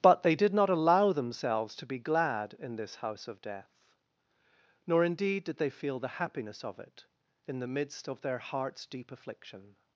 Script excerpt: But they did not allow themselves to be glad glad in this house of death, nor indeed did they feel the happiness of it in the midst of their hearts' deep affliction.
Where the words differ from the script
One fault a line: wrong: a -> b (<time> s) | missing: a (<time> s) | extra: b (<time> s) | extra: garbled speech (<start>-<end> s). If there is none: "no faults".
missing: glad (2.5 s)